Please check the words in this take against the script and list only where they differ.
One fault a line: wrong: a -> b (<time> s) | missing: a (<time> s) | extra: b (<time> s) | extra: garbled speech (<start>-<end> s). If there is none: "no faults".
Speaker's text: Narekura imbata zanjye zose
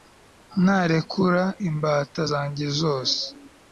no faults